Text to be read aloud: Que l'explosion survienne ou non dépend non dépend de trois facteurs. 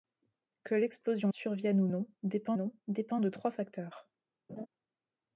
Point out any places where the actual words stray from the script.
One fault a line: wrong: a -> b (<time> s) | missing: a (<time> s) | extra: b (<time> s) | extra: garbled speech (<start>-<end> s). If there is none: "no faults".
no faults